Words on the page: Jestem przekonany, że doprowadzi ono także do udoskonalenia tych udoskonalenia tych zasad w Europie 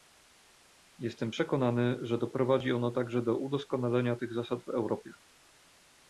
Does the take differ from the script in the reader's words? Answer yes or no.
yes